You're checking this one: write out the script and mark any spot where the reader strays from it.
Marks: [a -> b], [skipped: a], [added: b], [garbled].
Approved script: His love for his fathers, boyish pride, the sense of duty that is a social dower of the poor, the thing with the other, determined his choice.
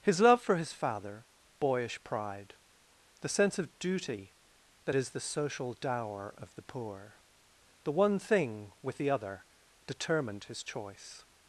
His love for his [fathers, -> father] boyish pride, the sense of duty that is [a -> the] social dower of the poor, the [added: one] thing with the other, determined his choice.